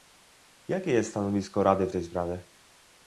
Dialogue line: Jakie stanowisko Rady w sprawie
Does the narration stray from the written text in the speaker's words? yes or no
yes